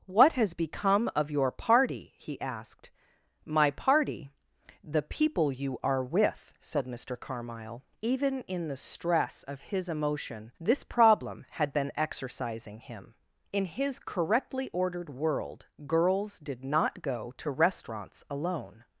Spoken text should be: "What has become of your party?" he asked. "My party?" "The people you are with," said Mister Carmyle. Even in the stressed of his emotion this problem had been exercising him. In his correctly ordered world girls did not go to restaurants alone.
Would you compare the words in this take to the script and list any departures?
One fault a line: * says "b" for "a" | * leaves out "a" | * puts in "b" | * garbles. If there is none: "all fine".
* says "stress" for "stressed"